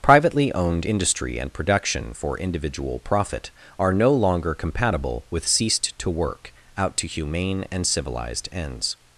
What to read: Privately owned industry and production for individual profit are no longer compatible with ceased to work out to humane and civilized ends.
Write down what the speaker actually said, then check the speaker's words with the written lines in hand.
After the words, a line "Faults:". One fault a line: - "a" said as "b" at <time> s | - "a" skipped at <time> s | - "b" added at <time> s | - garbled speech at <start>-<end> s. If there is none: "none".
Privately owned industry and production for individual profit are no longer compatible with ceased to work out to humane and civilized ends.
Faults:
none